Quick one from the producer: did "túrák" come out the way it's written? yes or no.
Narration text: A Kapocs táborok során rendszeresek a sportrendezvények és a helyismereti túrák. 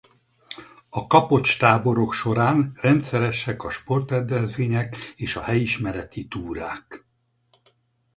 yes